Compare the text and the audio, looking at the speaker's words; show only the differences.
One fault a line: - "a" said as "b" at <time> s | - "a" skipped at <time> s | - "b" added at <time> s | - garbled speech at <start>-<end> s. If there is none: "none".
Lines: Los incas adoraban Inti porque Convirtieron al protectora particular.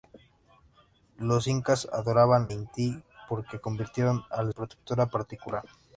none